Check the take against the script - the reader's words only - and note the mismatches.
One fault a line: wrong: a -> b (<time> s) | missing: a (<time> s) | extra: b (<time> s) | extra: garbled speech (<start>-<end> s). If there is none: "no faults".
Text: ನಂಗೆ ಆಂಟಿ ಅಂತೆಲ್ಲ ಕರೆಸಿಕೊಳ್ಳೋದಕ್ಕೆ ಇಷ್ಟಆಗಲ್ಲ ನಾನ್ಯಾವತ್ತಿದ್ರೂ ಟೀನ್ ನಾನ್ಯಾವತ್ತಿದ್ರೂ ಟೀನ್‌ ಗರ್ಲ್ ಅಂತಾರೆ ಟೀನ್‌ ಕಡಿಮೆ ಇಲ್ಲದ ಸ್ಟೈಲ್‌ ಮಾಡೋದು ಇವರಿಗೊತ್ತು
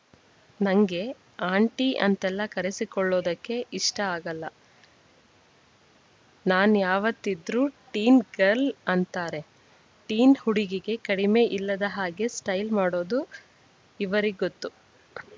missing: ನಾನ್ಯಾವತ್ತಿದ್ರೂ ಟೀನ್ (8.2 s)
extra: ಹುಡುಗಿಗೆ (10.4 s)
extra: ಹಾಗೆ (12.0 s)